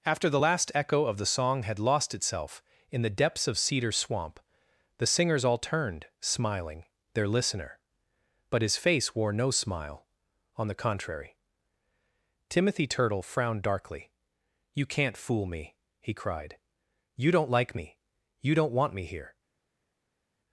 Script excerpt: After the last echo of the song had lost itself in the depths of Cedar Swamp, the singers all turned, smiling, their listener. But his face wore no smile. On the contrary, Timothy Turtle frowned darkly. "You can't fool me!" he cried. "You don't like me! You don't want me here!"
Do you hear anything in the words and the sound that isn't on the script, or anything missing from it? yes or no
no